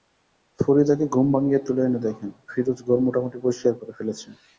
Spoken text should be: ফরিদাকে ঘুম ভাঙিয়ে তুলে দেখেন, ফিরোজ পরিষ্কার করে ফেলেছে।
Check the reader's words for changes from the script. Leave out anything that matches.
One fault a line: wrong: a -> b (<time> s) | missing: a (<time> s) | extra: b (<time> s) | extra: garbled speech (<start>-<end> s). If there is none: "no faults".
extra: এনে (1.9 s)
extra: ঘর মোটামুটি (2.9 s)